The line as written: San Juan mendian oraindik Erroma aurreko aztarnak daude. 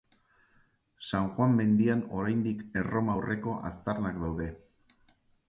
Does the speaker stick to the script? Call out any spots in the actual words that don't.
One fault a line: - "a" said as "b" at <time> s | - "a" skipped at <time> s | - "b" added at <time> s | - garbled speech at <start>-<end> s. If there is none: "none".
none